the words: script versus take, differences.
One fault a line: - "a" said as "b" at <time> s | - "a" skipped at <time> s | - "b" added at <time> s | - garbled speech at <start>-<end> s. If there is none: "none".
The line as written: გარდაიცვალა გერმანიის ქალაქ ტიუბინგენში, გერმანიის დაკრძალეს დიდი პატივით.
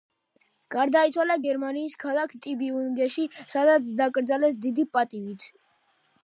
- "გერმანიის" said as "სადაც" at 3.5 s